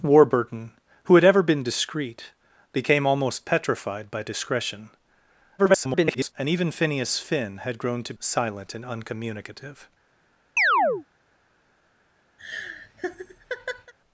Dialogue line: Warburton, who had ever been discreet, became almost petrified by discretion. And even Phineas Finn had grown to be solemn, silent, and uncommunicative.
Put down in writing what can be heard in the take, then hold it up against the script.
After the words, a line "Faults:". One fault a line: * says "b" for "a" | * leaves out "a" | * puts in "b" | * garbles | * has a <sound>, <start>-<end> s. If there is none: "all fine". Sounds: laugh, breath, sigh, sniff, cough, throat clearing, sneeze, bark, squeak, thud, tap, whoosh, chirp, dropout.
Warburton, who had ever been discreet, became almost petrified by discretion. [garbled] And even Phineas Finn had grown to silent, and uncommunicative.
Faults:
* garbles
* leaves out "be solemn"
* has a chirp, 10.6-11.1 s
* has a laugh, 12.4-13.9 s